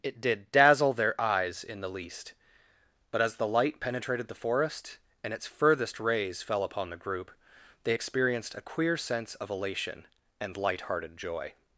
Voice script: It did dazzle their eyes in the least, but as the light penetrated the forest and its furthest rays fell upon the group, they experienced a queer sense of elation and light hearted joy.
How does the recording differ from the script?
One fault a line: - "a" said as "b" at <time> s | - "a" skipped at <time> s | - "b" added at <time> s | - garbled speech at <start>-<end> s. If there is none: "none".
none